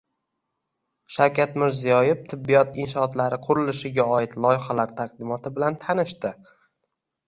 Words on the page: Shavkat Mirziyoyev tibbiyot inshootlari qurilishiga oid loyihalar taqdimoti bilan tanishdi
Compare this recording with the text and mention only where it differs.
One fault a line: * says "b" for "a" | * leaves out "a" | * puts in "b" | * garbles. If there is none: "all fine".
all fine